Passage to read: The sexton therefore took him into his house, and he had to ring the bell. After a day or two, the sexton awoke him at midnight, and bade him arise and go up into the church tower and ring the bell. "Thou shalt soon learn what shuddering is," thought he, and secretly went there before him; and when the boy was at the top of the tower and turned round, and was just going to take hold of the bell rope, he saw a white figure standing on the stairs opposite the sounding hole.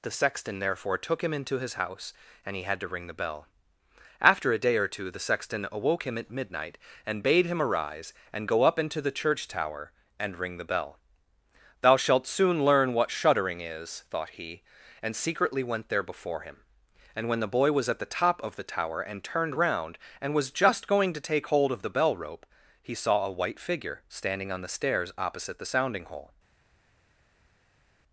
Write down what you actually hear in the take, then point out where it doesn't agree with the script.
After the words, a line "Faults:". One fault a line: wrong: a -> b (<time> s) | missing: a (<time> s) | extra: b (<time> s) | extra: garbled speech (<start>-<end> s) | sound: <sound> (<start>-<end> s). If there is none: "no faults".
The sexton therefore took him into his house, and he had to ring the bell. After a day or two, the sexton awoke him at midnight, and bade him arise and go up into the church tower and ring the bell. "Thou shalt soon learn what shuddering is," thought he, and secretly went there before him; and when the boy was at the top of the tower and turned round, and was just going to take hold of the bell rope, he saw a white figure standing on the stairs opposite the sounding hole.
Faults:
no faults